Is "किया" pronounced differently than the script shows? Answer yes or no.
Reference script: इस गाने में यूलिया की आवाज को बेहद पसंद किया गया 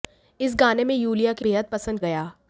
yes